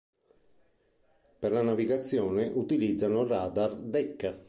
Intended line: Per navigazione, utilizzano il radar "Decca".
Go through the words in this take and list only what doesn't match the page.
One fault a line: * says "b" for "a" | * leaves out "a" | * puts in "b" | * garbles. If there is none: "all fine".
* puts in "la"